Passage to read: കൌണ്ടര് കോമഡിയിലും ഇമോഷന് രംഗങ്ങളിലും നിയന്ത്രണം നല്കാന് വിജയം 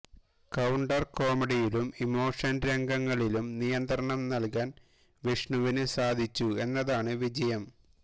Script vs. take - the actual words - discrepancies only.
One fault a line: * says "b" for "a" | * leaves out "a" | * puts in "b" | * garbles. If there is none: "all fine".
* puts in "വിഷ്ണുവിന് സാധിച്ചു എന്നതാണ്"